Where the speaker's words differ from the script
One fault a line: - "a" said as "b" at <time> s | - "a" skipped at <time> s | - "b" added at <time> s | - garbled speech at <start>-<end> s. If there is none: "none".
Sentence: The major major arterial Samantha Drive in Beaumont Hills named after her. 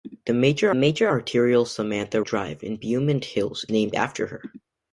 none